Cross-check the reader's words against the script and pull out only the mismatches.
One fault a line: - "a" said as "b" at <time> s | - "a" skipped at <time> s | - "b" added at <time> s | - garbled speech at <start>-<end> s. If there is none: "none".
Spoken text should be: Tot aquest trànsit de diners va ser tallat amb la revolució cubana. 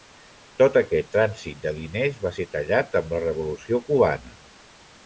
none